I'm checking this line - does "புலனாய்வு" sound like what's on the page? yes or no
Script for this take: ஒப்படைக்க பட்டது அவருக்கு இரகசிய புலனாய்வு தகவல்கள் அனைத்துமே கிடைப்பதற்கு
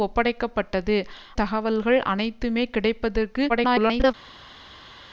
no